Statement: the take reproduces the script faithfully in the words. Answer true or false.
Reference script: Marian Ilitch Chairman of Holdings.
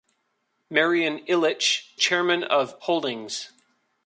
true